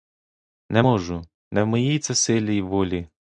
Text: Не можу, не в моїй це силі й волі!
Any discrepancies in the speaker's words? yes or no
no